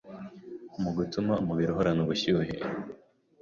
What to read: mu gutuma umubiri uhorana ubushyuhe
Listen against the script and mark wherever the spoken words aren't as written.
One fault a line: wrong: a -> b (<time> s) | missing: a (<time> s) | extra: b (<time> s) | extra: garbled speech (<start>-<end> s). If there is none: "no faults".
no faults